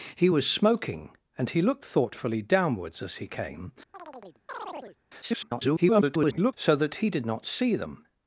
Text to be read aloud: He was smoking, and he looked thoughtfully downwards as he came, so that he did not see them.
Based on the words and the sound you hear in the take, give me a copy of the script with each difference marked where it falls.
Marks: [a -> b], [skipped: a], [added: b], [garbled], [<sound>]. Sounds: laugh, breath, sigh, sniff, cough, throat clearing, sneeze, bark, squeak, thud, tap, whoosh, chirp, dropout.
He was smoking, and he looked thoughtfully downwards as he came, [chirp] [garbled] so that he did not see them.